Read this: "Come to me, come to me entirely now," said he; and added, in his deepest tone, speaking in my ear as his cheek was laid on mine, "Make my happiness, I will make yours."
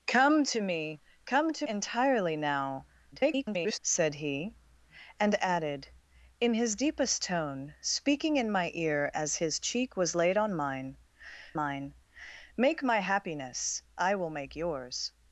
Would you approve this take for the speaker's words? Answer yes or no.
no